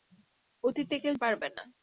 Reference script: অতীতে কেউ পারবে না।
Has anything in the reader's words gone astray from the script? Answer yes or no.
no